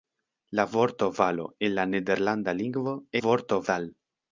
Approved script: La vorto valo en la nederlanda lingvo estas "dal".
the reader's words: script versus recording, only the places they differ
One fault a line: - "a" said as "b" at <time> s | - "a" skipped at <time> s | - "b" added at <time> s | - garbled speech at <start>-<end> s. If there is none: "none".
- "estas" said as "vorto" at 3.2 s